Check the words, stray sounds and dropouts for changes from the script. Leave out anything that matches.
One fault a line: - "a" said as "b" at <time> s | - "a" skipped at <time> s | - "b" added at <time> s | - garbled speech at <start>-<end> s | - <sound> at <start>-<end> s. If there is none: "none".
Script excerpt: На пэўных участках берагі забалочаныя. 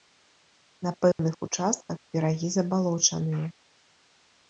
- dropout at 1.1-1.2 s